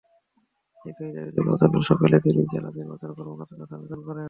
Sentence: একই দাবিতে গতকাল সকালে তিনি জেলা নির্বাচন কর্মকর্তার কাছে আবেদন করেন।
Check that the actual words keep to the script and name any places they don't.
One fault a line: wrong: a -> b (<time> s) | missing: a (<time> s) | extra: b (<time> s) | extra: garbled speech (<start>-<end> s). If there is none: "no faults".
no faults